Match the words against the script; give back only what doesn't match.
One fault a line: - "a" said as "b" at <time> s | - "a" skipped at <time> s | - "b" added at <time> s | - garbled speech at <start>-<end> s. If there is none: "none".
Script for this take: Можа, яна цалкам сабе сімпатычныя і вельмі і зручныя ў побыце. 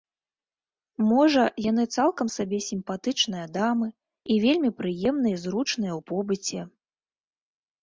- "яна" said as "яны" at 1.7 s
- "дамы" added at 3.6 s
- "прыемныя" added at 4.8 s